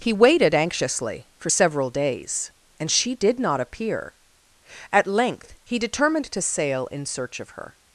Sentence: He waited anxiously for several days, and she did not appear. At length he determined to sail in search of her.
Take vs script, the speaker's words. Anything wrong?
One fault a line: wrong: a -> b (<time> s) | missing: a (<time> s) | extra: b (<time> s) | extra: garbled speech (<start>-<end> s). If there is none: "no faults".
no faults